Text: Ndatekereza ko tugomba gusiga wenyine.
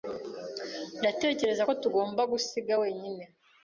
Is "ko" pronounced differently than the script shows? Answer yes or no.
no